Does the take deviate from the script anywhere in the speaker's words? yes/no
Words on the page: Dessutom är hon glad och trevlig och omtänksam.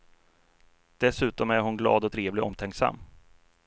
no